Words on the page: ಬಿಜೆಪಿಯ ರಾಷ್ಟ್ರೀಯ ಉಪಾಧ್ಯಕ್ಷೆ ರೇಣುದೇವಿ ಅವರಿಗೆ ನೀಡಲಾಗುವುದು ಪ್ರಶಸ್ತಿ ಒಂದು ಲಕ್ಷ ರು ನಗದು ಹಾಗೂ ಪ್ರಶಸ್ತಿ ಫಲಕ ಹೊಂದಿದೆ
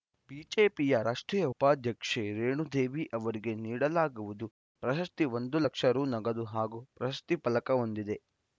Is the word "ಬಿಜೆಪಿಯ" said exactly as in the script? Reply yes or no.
yes